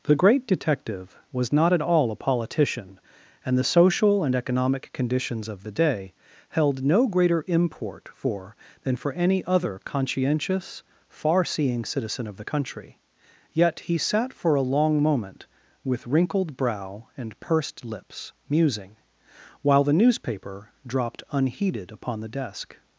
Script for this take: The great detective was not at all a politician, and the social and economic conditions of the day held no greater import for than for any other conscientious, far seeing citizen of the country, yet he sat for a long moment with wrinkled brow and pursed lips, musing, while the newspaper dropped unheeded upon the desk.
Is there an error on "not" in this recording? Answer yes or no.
no